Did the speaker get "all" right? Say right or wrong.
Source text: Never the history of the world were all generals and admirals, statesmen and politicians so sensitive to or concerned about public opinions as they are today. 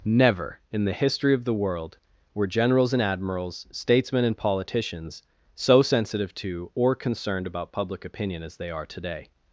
wrong